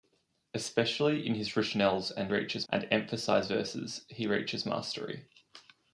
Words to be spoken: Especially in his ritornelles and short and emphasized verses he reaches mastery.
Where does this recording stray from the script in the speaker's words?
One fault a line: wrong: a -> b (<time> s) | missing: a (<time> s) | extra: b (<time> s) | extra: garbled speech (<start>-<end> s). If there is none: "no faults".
wrong: short -> reaches (2.3 s)